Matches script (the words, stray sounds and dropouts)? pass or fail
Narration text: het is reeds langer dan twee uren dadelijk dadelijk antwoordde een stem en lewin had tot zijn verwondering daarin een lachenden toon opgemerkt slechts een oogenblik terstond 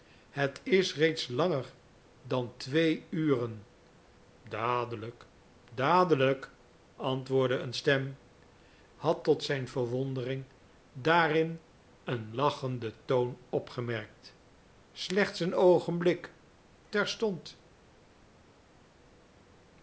fail